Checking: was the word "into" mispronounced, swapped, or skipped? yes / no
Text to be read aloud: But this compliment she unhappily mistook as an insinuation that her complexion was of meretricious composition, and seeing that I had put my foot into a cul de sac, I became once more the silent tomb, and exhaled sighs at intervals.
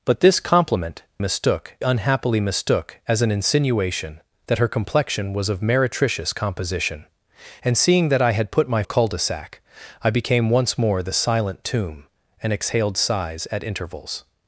yes